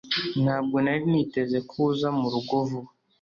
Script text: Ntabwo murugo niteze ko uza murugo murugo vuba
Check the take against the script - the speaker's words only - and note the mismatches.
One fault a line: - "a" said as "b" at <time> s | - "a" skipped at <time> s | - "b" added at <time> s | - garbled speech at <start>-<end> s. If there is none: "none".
- "murugo" said as "nari" at 0.8 s
- "murugo" skipped at 2.5 s